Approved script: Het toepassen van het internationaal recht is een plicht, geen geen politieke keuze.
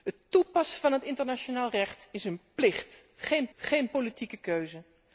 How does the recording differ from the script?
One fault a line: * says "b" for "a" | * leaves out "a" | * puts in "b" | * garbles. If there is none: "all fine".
all fine